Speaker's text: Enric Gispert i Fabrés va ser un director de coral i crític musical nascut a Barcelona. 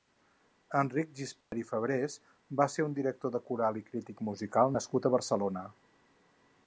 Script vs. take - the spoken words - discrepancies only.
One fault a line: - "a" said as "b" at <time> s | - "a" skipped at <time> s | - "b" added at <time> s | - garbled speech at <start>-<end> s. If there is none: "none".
none